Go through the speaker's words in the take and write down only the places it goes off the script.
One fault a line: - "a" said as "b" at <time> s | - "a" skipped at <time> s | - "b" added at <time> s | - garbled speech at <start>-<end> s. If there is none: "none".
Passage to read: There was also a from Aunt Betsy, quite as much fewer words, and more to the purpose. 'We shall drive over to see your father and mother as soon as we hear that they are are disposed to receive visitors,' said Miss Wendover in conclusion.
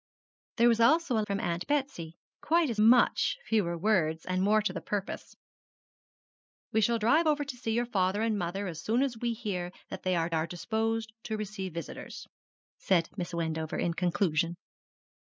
none